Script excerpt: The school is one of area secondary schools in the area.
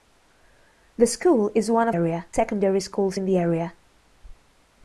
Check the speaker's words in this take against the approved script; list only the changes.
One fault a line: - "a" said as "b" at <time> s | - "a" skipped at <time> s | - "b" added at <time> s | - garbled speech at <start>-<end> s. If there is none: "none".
none